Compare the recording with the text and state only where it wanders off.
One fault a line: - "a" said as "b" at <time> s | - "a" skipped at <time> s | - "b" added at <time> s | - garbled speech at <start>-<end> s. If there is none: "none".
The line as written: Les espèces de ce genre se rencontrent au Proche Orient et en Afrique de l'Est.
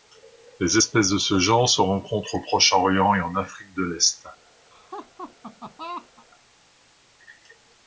none